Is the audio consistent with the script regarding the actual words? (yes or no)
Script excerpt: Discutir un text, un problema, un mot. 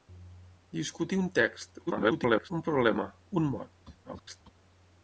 no